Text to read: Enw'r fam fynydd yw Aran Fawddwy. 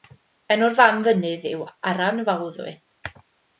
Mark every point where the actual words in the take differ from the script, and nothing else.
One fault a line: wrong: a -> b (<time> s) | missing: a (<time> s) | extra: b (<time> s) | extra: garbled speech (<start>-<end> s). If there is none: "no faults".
no faults